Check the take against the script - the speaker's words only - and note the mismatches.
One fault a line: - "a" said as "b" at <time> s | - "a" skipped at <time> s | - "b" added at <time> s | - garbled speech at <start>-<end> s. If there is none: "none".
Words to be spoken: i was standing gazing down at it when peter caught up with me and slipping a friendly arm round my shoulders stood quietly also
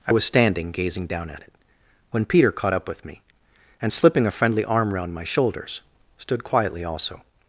none